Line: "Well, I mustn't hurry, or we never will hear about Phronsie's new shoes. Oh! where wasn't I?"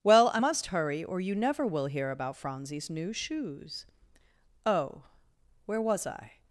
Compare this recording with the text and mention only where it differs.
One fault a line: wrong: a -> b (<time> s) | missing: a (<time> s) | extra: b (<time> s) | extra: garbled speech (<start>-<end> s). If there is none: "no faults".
wrong: mustn't -> must (0.4 s)
wrong: we -> you (1.2 s)
wrong: wasn't -> was (5.8 s)